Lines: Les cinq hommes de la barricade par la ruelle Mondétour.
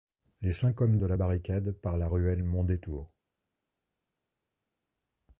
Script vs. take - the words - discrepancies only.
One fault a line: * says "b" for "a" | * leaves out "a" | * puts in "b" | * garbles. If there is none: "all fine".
all fine